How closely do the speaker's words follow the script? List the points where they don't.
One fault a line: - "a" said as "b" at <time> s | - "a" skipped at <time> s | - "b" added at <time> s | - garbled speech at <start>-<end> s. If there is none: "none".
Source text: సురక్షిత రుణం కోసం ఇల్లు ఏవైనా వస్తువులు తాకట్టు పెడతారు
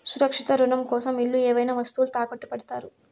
none